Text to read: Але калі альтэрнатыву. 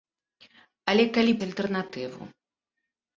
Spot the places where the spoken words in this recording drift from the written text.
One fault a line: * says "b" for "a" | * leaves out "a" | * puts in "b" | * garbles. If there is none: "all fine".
all fine